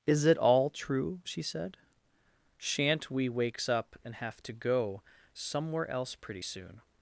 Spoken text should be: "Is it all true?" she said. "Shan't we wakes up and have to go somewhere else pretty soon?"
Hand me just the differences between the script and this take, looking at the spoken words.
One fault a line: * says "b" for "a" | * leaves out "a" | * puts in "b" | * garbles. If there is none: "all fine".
all fine